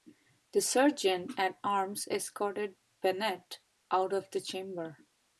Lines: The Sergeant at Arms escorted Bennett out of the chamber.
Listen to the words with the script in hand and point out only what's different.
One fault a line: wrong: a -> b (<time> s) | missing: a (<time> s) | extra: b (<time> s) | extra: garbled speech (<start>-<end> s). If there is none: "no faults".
no faults